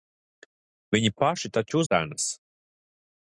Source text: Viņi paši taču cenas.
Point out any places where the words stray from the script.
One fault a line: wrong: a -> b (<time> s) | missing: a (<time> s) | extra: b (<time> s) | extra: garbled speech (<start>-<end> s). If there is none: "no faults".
no faults